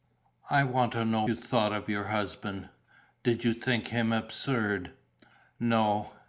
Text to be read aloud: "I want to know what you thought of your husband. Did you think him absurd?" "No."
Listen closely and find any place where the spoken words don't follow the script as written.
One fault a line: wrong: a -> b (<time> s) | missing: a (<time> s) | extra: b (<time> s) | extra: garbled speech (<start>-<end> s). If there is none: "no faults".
missing: what (1.2 s)